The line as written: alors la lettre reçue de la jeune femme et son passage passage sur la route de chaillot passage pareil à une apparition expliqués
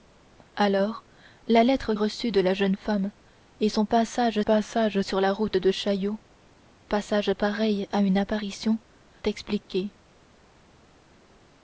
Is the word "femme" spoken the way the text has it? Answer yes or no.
yes